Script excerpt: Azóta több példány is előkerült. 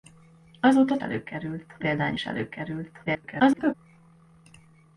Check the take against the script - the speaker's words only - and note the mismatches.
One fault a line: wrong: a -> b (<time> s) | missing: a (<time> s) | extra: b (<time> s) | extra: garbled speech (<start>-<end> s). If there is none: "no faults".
wrong: több -> előkerült (1.0 s)
extra: garbled speech (3.1-3.7 s)